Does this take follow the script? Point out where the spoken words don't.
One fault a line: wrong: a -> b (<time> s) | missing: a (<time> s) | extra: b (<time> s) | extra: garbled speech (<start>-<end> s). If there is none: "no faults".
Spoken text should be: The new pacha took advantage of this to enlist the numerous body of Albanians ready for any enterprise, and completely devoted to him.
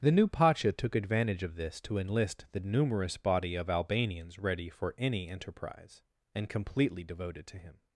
no faults